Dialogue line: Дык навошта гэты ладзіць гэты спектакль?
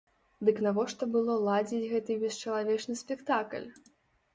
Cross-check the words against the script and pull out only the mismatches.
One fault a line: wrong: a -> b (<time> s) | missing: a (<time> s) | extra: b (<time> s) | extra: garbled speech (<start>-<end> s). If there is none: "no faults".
wrong: гэты -> было (1.2 s)
extra: бесчалавечны (2.3 s)